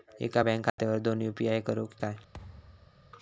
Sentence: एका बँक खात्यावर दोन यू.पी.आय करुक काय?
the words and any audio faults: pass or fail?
fail